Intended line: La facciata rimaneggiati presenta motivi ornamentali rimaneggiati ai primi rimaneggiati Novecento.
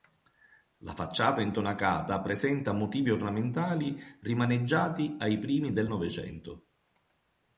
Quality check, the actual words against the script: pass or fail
fail